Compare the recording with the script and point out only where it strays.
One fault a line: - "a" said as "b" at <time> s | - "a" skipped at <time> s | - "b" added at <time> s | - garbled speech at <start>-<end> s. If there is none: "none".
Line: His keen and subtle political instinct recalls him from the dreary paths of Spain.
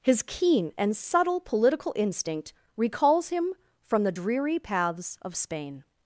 none